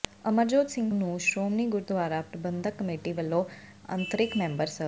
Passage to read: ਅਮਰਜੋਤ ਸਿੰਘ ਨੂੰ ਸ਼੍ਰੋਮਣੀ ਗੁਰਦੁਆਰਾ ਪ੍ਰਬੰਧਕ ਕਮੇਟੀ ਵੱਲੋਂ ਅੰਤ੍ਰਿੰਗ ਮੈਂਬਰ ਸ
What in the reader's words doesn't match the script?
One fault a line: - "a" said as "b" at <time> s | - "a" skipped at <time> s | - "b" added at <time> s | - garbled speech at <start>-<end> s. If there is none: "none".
none